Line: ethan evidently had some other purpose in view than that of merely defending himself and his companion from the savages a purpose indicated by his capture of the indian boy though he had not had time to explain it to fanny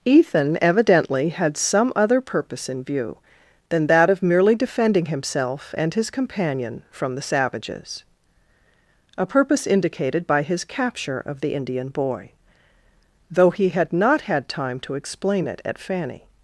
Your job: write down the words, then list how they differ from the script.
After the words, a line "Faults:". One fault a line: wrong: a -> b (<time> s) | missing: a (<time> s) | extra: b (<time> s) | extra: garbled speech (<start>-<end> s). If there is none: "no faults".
ethan evidently had some other purpose in view than that of merely defending himself and his companion from the savages a purpose indicated by his capture of the indian boy though he had not had time to explain it at fanny
Faults:
wrong: to -> at (15.6 s)